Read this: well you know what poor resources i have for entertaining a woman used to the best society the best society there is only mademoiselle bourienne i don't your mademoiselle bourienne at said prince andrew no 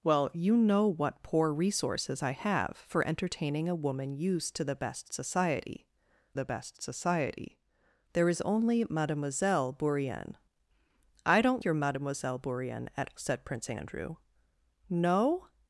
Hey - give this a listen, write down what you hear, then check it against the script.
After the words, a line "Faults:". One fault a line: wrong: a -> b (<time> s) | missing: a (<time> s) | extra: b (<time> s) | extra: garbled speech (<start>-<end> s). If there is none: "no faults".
well you know what poor resources i have for entertaining a woman used to the best society the best society there is only mademoiselle bourienne i don't your mademoiselle bourienne at said prince andrew no
Faults:
no faults